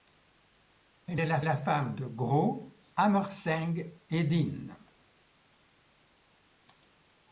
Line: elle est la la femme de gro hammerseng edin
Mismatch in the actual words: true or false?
false